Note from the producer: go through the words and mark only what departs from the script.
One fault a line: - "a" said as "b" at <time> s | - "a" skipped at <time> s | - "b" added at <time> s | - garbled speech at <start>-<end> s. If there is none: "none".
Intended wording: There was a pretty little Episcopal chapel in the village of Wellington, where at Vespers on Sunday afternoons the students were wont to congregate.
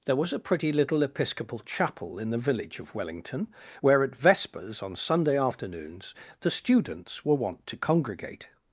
none